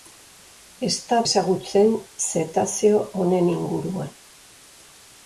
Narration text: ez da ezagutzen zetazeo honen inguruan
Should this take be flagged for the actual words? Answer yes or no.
no